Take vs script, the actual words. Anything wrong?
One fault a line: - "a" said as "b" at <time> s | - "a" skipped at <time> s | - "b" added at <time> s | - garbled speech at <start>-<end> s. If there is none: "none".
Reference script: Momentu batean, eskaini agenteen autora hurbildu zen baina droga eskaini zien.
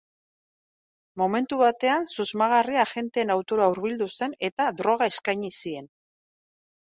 - "eskaini" said as "susmagarria" at 2.1 s
- "baina" said as "eta" at 4.5 s